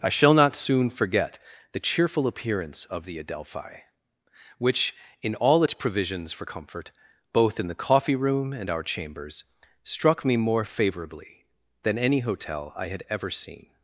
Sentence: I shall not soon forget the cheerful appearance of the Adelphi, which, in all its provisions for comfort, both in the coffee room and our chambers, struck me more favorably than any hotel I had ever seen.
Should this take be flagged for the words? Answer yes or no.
no